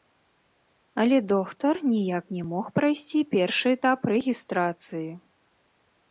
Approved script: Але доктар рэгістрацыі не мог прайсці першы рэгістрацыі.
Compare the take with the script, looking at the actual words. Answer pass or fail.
fail